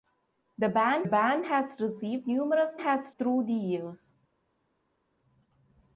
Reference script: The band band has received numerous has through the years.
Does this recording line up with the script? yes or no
yes